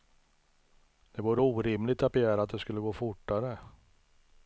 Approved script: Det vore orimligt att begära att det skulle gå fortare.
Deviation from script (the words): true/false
false